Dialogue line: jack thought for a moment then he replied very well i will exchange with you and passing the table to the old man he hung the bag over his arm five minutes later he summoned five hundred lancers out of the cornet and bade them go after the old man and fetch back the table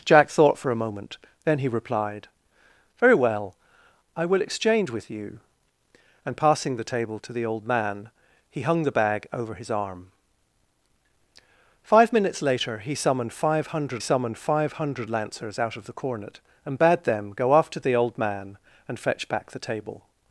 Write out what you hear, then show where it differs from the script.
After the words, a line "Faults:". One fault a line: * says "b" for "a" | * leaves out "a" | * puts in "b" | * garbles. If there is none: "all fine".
jack thought for a moment then he replied very well i will exchange with you and passing the table to the old man he hung the bag over his arm five minutes later he summoned five hundred summoned five hundred lancers out of the cornet and bade them go after the old man and fetch back the table
Faults:
* puts in "summoned five hundred"